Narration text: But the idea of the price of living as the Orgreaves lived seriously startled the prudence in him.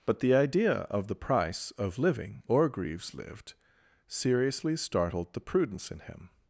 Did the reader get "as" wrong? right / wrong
wrong